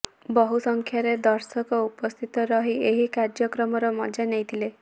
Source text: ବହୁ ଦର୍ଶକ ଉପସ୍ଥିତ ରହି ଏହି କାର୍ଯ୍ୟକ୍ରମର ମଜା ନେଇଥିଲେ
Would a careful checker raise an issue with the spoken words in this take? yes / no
yes